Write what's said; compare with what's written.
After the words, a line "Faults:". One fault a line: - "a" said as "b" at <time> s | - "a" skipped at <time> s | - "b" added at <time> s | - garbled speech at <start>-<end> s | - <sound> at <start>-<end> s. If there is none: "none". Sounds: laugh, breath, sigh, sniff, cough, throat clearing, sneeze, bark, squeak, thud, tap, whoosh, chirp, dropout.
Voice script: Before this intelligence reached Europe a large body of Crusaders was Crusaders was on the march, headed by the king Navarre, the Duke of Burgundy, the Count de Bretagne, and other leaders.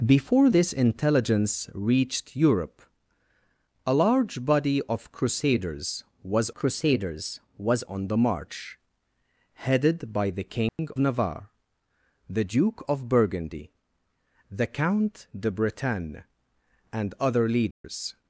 Before this intelligence reached Europe a large body of Crusaders was Crusaders was on the march, headed by the king Navarre, the Duke of Burgundy, the Count de Bretagne, and other leaders.
Faults:
- dropout at 10.7-10.8 s
- dropout at 17.7-17.8 s